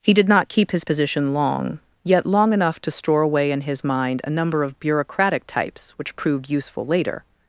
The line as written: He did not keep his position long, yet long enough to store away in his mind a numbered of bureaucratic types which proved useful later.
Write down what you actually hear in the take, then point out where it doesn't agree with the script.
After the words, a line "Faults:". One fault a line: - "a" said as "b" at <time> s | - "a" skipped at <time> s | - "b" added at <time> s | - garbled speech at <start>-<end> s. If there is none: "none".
He did not keep his position long, yet long enough to store away in his mind a number of bureaucratic types which proved useful later.
Faults:
- "numbered" said as "number" at 4.3 s